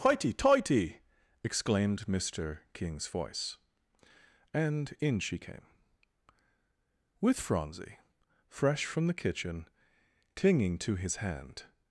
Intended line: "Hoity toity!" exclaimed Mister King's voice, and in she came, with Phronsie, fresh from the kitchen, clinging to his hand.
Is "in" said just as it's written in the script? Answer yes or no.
yes